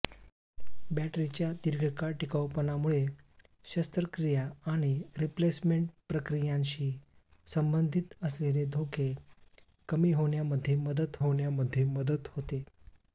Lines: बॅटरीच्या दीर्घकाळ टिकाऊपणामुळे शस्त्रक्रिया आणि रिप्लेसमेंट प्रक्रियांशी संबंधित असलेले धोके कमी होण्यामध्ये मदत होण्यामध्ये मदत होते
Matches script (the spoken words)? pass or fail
pass